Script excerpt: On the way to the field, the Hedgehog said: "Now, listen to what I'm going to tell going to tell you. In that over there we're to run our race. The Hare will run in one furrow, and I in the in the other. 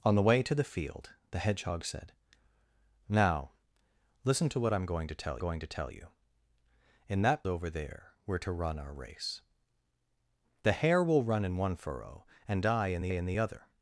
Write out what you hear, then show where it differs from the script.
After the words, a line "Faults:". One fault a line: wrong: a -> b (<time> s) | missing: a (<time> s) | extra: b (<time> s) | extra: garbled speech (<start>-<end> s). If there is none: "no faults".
On the way to the field, the Hedgehog said: "Now, listen to what I'm going to tell going to tell you. In that over there we're to run our race. The Hare will run in one furrow, and I in the in the other.
Faults:
no faults